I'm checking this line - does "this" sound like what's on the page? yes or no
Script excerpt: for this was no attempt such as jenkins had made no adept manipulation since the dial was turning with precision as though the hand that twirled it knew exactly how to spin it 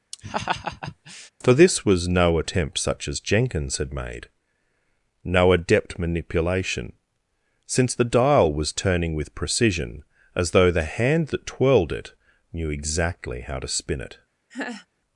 yes